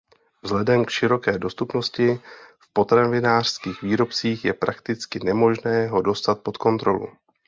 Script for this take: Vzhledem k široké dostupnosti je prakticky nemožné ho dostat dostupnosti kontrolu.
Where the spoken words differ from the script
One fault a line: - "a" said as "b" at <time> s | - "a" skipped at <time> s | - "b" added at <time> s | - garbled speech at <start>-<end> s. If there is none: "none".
- "v potravinářských výrobcích" added at 2.6 s
- "dostupnosti" said as "pod" at 6.4 s